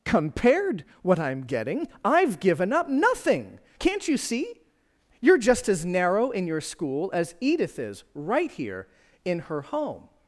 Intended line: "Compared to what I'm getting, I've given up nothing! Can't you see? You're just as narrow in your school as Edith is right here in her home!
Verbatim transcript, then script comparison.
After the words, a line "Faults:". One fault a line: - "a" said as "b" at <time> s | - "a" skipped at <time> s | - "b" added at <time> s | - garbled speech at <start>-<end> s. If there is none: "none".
"Compared what I'm getting, I've given up nothing! Can't you see? You're just as narrow in your school as Edith is right here in her home!
Faults:
- "to" skipped at 0.8 s